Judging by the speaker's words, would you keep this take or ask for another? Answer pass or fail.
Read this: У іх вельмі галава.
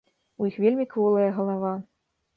fail